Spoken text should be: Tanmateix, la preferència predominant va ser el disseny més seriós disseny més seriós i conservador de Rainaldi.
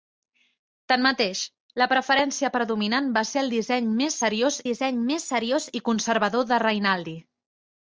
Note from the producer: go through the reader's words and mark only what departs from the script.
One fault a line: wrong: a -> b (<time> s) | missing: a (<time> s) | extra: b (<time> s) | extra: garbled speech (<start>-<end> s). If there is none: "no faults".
no faults